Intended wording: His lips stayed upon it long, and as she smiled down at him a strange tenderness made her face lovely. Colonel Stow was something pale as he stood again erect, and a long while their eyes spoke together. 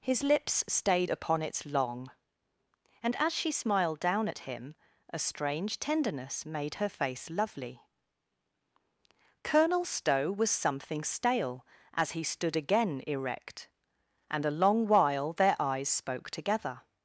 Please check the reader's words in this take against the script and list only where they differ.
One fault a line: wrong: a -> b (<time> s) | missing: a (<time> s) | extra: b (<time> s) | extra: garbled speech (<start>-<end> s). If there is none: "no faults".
wrong: pale -> stale (11.0 s)